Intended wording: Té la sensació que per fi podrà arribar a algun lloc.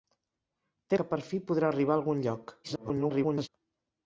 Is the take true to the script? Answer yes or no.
no